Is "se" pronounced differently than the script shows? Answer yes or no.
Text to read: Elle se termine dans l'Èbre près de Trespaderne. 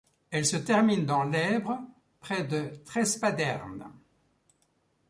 no